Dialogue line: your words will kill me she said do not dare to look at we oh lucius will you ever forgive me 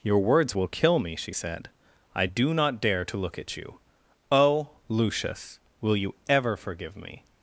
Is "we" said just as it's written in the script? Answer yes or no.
no